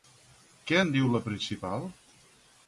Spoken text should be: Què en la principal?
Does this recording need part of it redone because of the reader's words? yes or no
yes